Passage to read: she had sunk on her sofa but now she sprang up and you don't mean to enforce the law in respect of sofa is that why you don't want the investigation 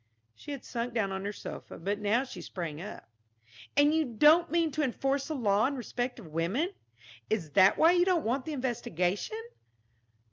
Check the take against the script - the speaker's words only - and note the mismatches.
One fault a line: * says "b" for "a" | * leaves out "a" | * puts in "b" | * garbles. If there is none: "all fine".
* puts in "down"
* says "women" for "sofa"